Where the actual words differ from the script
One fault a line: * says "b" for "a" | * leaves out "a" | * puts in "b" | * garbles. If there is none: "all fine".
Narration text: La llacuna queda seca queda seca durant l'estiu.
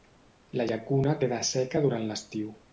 * leaves out "queda seca"